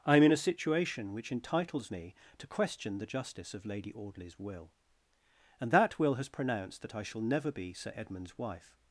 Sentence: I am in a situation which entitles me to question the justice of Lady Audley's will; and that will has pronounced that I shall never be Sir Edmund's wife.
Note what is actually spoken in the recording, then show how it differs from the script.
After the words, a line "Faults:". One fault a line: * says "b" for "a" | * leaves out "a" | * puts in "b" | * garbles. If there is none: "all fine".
I am in a situation which entitles me to question the justice of Lady Audley's will; and that will has pronounced that I shall never be Sir Edmund's wife.
Faults:
all fine